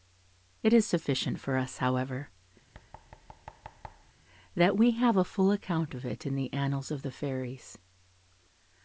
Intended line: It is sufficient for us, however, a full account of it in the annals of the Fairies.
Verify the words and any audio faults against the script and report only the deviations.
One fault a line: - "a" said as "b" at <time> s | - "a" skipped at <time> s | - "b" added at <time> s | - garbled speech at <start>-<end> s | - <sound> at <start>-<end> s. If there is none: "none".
- thud at 2.7-4.1 s
- "that we have" added at 4.5 s